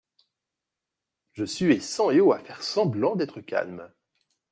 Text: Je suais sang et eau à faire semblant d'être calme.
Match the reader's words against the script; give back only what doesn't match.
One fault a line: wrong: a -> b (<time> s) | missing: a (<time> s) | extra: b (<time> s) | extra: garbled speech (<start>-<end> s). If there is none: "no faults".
no faults